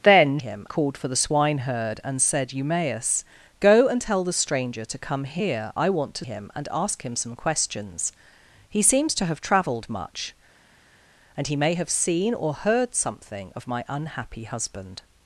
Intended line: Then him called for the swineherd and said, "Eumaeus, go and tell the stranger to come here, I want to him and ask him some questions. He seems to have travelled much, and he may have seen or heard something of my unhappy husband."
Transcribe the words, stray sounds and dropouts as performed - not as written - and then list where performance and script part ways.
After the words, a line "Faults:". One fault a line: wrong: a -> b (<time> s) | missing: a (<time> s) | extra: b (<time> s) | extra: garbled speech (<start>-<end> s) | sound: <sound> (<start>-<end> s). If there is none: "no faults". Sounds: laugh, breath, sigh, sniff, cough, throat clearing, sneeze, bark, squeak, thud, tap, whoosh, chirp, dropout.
Then him called for the swineherd and said, "Eumaeus, go and tell the stranger to come here, I want to him and ask him some questions. He seems to have travelled much, and he may have seen or heard something of my unhappy husband."
Faults:
no faults